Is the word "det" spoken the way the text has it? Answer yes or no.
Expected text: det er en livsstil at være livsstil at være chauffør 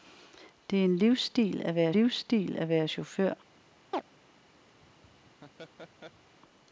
yes